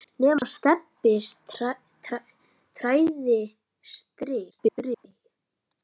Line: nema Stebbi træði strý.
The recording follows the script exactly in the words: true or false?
false